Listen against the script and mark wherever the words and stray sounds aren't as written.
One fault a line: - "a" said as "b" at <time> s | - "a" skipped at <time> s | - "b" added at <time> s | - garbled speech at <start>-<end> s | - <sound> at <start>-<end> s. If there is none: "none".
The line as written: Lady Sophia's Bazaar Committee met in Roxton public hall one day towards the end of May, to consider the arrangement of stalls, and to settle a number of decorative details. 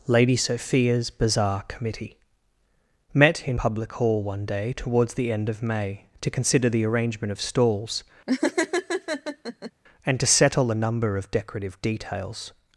- "Roxton" skipped at 3.6 s
- laugh at 8.3-9.7 s